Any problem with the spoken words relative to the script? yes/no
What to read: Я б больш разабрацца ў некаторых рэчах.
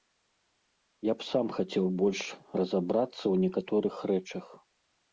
yes